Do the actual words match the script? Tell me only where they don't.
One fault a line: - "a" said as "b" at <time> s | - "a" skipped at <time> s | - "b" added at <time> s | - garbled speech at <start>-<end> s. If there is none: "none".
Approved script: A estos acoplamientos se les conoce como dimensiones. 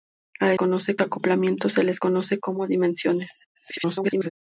- "estos" said as "conoce" at 0.5 s
- garbled speech at 3.5-4.3 s